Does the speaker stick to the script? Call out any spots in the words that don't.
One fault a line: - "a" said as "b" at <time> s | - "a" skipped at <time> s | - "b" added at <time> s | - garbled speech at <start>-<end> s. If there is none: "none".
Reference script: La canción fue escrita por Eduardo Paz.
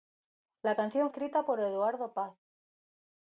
- "fue" skipped at 1.1 s